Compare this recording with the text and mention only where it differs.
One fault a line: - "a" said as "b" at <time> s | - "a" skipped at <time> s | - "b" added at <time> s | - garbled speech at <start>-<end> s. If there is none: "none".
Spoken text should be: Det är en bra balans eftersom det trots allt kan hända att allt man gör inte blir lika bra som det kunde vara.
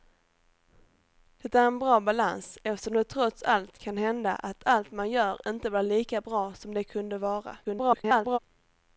- garbled speech at 7.6-8.4 s